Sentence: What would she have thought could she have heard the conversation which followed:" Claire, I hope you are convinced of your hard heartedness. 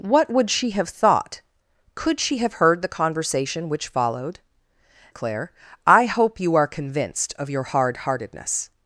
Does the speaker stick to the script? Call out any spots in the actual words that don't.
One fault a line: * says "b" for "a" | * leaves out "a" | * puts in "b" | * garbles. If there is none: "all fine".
all fine